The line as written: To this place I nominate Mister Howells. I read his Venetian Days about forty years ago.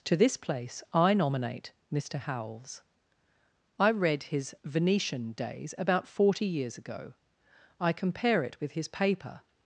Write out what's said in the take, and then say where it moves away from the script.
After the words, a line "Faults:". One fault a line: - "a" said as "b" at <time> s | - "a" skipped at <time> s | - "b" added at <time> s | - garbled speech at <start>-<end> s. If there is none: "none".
To this place I nominate Mister Howells. I read his Venetian Days about forty years ago. I compare it with his paper
Faults:
- "I compare it with his paper" added at 7.8 s